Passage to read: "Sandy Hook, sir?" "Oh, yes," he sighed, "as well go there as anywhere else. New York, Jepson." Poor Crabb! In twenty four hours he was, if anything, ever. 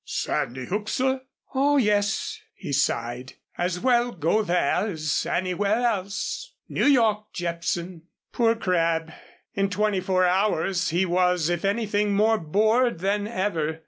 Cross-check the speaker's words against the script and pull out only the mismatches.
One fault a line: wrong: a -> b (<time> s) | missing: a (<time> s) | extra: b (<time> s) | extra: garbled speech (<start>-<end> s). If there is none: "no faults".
extra: more bored than (12.2 s)